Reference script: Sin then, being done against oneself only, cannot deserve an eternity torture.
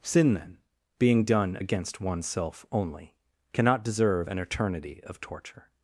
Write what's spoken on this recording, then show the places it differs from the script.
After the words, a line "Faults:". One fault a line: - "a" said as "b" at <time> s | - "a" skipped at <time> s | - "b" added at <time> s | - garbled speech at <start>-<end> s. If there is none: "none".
Sin then, being done against oneself only, cannot deserve an eternity of torture.
Faults:
- "of" added at 5.0 s